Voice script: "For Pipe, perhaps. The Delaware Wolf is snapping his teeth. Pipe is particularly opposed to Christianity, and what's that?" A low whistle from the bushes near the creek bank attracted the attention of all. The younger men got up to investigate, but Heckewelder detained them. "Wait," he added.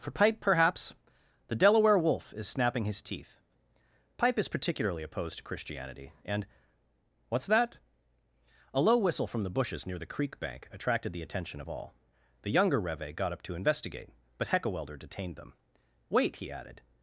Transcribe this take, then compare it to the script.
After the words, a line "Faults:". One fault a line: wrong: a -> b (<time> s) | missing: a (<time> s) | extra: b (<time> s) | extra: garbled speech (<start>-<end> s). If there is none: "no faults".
"For Pipe, perhaps. The Delaware Wolf is snapping his teeth. Pipe is particularly opposed to Christianity, and what's that?" A low whistle from the bushes near the creek bank attracted the attention of all. The younger reve got up to investigate, but Heckewelder detained them. "Wait," he added.
Faults:
wrong: men -> reve (12.8 s)